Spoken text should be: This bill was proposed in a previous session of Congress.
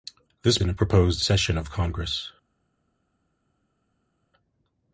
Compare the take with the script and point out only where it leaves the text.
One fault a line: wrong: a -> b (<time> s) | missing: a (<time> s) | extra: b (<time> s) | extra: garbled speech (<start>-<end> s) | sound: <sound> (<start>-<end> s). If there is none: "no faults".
missing: bill was proposed (0.6 s)
wrong: previous -> proposed (0.7 s)